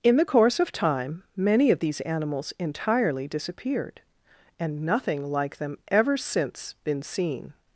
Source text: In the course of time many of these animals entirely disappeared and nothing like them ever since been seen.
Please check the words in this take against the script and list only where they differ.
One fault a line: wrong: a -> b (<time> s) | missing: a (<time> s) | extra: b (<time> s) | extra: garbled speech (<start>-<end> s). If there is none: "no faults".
no faults